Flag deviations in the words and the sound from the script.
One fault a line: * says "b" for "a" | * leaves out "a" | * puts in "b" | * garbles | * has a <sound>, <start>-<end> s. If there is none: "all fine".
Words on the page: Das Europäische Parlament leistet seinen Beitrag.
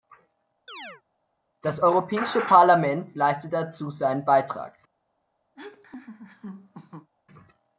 * has a chirp, 0.7-1.0 s
* puts in "dazu"
* has a laugh, 5.6-7.1 s